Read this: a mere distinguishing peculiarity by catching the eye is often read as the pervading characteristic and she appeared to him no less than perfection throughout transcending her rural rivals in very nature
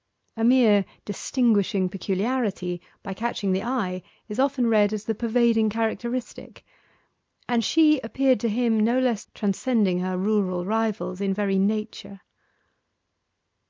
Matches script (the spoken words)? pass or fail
fail